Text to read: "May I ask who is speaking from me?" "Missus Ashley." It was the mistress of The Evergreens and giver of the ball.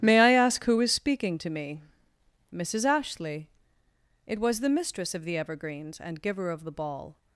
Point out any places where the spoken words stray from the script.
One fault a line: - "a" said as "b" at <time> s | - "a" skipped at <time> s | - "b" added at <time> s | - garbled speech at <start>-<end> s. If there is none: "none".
- "from" said as "to" at 1.4 s